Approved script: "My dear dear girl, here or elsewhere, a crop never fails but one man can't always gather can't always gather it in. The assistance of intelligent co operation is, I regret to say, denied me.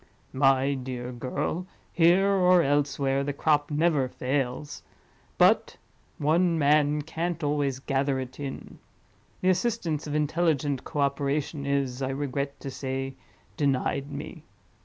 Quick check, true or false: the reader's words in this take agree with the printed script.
false